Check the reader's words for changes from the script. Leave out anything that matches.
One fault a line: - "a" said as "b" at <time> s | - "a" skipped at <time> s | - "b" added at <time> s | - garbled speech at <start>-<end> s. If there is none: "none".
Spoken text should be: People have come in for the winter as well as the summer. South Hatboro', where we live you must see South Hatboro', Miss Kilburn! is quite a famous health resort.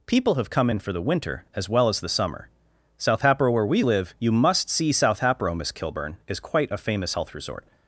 none